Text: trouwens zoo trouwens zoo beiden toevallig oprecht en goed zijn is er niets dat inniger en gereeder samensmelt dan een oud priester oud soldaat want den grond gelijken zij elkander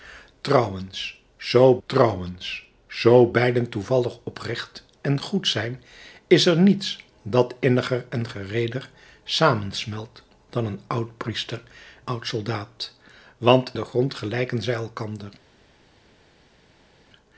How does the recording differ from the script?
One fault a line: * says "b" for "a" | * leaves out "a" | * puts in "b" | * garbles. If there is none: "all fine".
all fine